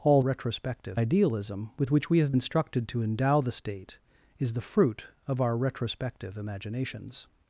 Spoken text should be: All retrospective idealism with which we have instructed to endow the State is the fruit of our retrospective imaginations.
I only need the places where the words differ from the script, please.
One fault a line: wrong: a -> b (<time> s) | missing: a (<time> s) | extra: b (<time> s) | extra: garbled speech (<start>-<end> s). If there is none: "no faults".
no faults